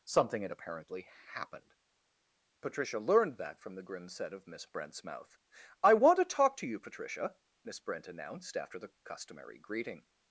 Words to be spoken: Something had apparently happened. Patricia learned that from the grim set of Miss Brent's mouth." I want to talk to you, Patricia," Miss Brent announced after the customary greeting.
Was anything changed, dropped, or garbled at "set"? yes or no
no